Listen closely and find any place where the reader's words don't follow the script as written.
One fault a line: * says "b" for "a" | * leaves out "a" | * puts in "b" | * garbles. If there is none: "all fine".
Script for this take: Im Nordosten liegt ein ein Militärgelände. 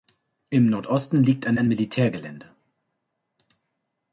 all fine